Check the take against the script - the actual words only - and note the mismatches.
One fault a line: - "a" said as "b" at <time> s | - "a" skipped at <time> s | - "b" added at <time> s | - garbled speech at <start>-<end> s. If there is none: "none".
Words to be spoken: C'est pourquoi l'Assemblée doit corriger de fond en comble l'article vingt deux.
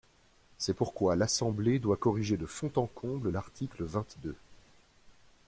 none